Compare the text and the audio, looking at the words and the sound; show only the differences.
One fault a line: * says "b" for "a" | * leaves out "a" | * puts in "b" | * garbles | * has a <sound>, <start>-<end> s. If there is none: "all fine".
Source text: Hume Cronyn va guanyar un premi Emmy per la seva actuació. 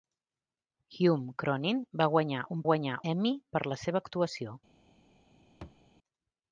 * says "guanyar" for "premi"
* has a thud, 5.6-5.8 s